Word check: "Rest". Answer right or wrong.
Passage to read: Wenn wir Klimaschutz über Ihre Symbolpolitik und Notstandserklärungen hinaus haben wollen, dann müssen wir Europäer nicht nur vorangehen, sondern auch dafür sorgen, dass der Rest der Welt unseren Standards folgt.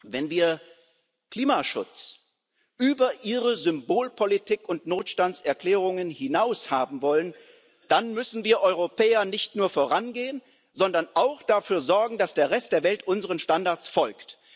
right